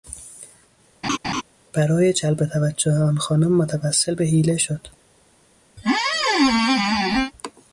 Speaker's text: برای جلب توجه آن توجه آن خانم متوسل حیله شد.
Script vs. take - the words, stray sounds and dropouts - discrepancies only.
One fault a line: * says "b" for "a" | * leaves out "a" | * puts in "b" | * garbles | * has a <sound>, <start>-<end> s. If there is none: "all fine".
* has a laugh, 1.0-1.4 s
* leaves out "توجه آن"
* puts in "به"
* has a squeak, 5.8-7.3 s